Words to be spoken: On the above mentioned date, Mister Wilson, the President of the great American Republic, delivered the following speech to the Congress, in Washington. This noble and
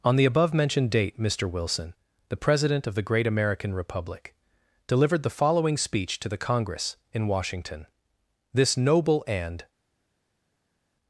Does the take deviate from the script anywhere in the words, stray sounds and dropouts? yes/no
no